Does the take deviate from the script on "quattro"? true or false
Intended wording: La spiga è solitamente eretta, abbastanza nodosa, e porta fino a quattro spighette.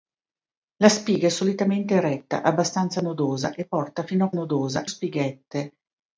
true